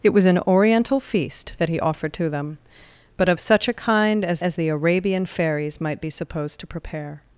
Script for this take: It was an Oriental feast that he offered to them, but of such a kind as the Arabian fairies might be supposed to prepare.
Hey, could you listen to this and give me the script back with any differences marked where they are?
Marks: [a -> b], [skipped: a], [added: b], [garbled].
It was an Oriental feast that he offered to them, but of such a kind as [added: as] the Arabian fairies might be supposed to prepare.